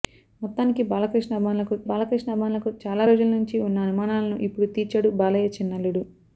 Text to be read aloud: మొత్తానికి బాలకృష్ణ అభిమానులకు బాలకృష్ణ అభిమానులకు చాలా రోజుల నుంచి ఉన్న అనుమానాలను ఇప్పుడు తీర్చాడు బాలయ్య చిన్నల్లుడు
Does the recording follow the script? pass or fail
pass